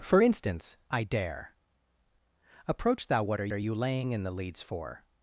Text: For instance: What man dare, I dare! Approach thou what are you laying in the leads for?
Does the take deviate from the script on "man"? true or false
true